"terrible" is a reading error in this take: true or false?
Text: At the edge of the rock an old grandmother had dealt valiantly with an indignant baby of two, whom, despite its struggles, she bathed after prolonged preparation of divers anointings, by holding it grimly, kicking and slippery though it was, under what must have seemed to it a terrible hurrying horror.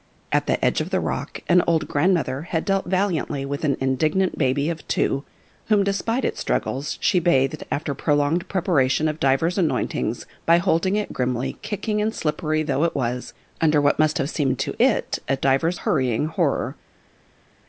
true